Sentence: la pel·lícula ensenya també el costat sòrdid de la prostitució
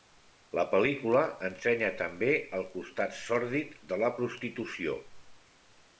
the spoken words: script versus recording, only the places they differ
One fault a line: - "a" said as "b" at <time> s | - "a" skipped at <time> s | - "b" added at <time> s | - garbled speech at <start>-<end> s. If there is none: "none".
none